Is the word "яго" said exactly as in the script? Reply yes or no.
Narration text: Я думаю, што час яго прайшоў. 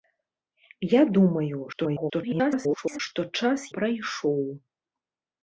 no